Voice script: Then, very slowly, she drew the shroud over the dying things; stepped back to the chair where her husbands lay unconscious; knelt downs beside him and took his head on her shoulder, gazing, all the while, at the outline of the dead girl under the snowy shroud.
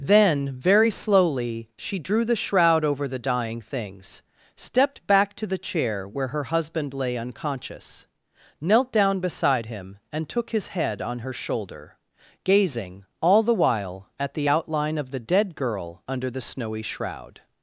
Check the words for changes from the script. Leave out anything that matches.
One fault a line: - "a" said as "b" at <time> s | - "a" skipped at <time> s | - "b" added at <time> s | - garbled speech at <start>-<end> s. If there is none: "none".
- "husbands" said as "husband" at 6.5 s
- "downs" said as "down" at 8.9 s